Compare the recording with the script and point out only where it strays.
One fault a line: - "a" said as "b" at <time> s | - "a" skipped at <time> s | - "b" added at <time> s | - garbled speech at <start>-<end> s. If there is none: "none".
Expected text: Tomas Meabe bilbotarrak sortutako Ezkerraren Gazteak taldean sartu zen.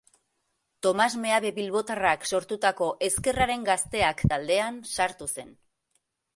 none